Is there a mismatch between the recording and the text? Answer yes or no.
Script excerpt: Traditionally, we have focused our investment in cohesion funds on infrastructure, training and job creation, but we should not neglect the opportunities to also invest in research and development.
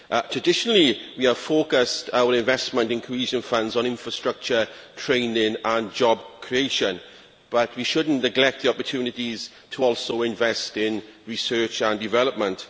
no